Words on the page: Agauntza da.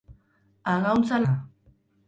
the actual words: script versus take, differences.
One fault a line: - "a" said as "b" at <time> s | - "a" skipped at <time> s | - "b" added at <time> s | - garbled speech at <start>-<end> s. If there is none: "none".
none